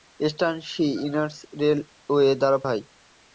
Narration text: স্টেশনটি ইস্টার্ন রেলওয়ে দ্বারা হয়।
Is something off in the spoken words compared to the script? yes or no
no